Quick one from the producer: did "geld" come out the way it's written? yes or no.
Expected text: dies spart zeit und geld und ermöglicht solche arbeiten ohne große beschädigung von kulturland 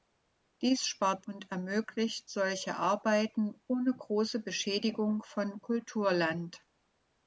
no